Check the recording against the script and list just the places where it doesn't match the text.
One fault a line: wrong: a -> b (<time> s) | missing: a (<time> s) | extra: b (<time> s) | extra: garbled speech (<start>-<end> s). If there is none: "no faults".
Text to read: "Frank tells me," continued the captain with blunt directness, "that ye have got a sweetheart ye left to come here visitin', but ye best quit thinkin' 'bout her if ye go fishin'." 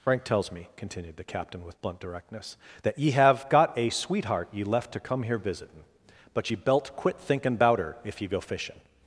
wrong: best -> belt (6.6 s)